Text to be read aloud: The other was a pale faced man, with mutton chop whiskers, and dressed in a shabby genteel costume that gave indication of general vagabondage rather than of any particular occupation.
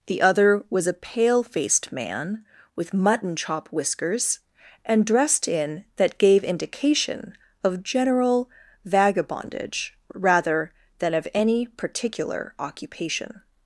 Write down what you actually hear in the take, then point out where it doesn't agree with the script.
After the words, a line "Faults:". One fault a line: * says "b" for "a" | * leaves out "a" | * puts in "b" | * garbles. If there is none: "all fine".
The other was a pale faced man, with mutton chop whiskers, and dressed in that gave indication of general vagabondage rather than of any particular occupation.
Faults:
* leaves out "a shabby genteel costume"